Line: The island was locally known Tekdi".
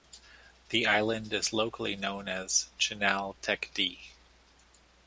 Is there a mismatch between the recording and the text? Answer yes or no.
yes